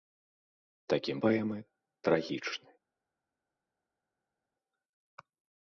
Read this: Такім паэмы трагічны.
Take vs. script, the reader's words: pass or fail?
pass